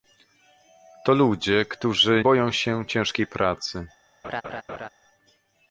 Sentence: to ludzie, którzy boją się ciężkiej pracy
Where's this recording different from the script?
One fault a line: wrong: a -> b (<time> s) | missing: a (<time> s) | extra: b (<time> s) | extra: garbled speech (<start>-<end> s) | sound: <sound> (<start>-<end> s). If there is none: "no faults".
sound: laugh (4.2-4.9 s)